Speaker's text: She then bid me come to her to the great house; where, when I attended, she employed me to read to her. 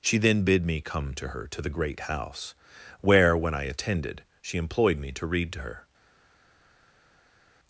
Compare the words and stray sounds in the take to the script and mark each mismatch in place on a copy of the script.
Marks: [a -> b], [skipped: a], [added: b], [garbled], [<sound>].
She then bid me come to her to the great house; where, when I attended, she employed me to read to her.